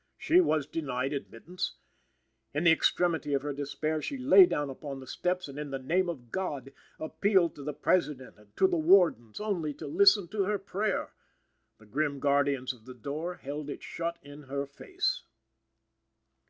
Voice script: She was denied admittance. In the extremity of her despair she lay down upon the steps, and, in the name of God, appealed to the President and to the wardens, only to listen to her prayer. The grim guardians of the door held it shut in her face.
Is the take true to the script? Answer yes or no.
yes